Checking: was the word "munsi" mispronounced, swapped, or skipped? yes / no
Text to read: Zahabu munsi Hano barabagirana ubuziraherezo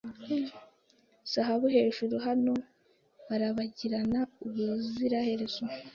yes